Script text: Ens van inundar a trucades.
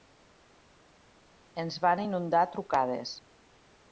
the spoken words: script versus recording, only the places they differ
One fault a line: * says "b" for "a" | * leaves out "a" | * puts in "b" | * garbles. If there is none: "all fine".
all fine